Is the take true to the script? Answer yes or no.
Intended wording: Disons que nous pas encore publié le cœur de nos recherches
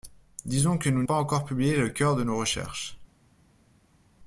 yes